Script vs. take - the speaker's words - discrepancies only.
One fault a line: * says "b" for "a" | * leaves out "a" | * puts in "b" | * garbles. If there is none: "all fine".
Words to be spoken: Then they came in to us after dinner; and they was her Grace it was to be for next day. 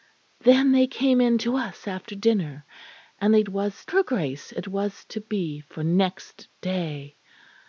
all fine